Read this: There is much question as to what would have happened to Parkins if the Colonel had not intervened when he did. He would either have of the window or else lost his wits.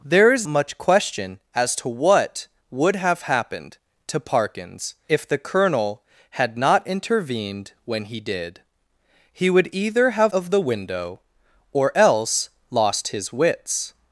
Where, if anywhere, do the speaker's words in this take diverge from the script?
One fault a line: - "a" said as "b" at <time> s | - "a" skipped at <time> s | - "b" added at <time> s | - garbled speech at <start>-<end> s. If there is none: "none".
none